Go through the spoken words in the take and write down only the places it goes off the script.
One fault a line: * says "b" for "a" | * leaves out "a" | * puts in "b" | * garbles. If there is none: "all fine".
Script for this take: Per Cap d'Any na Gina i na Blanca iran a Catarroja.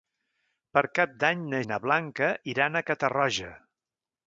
* leaves out "Gina"